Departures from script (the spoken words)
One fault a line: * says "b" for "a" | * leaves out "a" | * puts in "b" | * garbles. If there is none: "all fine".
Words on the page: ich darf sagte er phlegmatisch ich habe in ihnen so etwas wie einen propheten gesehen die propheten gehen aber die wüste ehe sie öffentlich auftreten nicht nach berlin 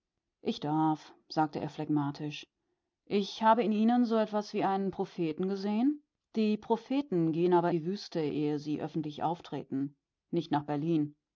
all fine